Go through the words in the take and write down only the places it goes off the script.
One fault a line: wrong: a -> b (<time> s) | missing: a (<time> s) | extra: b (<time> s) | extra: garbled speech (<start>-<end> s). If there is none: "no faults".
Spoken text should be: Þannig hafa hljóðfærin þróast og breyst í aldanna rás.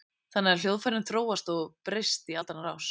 no faults